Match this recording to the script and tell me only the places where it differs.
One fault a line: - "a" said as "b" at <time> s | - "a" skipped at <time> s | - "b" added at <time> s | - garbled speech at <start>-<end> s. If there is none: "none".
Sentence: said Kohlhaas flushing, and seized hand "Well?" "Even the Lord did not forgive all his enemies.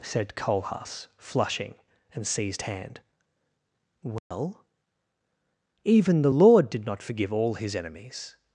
none